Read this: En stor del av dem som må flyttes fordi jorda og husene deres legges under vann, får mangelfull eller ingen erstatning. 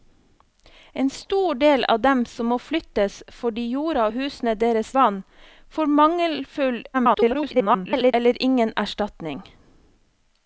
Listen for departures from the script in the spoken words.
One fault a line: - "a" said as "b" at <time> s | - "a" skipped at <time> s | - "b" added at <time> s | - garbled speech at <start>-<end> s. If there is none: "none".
- "legges under" skipped at 4.9 s
- garbled speech at 6.9-8.1 s